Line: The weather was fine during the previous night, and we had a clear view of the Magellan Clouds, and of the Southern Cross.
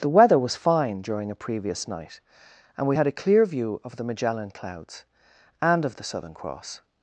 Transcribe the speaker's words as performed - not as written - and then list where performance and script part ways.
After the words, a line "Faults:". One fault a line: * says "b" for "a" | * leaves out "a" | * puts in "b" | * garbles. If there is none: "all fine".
The weather was fine during a previous night, and we had a clear view of the Magellan Clouds, and of the Southern Cross.
Faults:
* says "a" for "the"